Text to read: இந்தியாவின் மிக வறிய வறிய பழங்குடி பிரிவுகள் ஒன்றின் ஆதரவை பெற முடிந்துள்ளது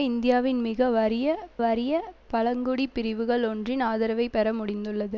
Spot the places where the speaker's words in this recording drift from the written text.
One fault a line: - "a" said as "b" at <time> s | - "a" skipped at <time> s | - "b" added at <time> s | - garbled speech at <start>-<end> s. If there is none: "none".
none